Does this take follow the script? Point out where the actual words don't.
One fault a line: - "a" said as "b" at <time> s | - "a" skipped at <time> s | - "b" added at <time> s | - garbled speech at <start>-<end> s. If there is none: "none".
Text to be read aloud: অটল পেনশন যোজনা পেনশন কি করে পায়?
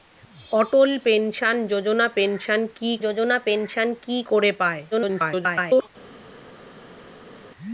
- "যোজনা পেনশন কি" added at 3.0 s
- garbled speech at 4.9-5.9 s